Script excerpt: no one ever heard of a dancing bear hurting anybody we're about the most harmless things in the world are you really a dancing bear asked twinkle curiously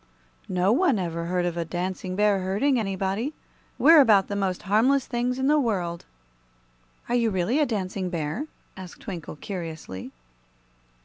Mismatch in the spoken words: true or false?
false